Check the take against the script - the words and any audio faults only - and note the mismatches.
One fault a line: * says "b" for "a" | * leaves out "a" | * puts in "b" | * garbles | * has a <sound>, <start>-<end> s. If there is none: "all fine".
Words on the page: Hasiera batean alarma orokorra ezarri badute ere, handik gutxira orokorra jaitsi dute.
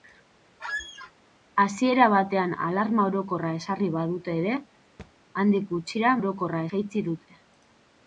* has a squeak, 0.6-1.1 s
* has a thud, 5.0-5.1 s